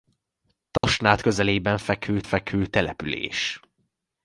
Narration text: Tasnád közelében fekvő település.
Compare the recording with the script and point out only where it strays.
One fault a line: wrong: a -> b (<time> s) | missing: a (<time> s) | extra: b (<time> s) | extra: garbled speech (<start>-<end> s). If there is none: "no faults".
extra: fekvő (2.2 s)